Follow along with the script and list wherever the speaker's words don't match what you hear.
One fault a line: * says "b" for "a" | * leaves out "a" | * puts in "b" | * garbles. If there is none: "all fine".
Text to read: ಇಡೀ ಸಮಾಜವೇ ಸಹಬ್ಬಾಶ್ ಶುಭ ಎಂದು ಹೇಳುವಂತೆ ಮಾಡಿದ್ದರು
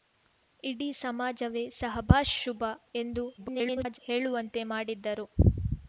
* garbles